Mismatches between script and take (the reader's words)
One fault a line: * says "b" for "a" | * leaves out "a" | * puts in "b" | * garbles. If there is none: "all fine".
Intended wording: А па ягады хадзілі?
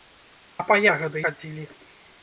all fine